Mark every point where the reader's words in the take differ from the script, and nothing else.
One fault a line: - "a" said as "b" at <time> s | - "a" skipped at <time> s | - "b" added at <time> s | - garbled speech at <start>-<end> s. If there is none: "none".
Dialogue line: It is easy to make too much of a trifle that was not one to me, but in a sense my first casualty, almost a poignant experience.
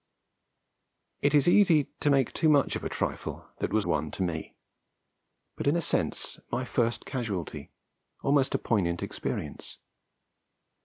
- "not" skipped at 3.9 s